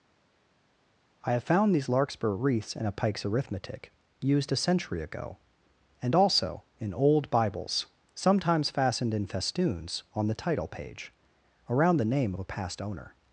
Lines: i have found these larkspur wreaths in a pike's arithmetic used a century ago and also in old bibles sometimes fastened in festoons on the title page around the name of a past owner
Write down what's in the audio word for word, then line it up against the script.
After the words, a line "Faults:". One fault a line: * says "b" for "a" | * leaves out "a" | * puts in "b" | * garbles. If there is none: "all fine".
i have found these larkspur wreaths in a pike's arithmetic used a century ago and also in old bibles sometimes fastened in festoons on the title page around the name of a past owner
Faults:
all fine